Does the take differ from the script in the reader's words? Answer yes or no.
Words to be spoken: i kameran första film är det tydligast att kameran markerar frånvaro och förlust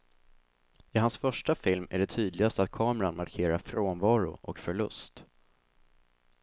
yes